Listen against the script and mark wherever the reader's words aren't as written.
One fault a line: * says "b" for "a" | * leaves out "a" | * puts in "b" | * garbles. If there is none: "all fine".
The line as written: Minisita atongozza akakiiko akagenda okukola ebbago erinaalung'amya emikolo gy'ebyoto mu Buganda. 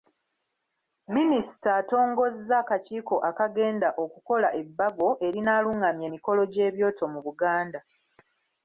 all fine